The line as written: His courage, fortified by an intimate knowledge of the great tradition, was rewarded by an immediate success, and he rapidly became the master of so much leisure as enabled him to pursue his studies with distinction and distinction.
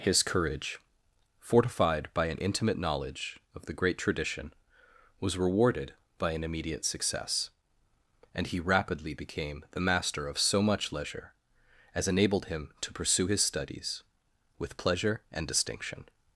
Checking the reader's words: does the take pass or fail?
fail